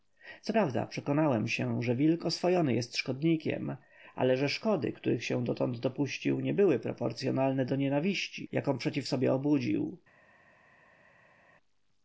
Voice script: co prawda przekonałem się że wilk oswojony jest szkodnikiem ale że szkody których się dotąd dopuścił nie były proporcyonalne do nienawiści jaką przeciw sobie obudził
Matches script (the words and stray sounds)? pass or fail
pass